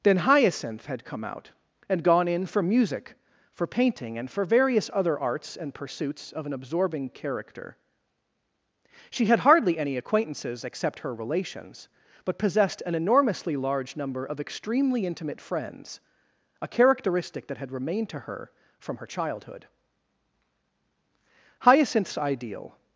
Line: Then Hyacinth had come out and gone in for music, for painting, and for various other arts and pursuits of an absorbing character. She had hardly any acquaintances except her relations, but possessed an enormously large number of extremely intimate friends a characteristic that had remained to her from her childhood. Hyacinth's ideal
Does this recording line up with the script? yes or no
yes